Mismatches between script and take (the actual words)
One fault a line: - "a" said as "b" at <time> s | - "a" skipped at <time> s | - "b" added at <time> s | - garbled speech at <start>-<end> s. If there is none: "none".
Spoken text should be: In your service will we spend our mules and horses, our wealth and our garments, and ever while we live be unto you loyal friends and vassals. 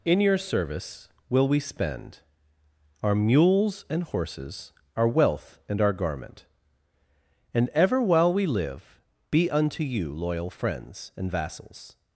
- "garments" said as "garment" at 5.9 s